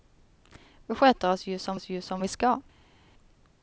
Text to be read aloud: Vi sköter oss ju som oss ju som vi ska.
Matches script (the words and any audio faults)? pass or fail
pass